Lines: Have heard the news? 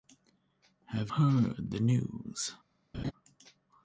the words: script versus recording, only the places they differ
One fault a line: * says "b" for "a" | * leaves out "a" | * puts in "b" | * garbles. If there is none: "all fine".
all fine